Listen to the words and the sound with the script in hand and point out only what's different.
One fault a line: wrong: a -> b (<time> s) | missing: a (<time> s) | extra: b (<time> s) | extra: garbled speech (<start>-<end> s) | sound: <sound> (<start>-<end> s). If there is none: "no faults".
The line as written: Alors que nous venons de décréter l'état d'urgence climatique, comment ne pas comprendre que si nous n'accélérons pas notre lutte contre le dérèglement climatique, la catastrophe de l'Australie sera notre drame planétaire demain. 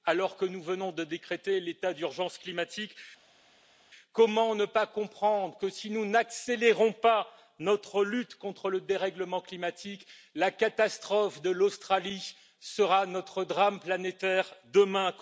no faults